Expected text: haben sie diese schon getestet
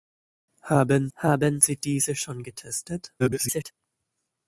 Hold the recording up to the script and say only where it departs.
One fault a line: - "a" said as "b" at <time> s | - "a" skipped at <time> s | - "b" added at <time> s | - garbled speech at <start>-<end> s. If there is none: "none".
- "haben" added at 1.2 s
- garbled speech at 3.2-3.7 s